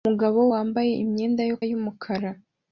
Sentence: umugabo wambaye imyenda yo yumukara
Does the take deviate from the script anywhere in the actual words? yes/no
no